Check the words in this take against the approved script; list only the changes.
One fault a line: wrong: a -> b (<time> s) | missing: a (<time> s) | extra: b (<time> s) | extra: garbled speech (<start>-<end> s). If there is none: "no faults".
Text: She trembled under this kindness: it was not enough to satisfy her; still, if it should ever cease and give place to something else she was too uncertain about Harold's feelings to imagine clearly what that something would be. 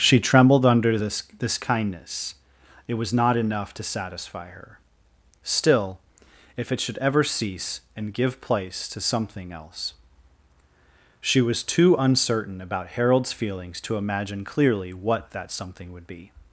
extra: this (1.4 s)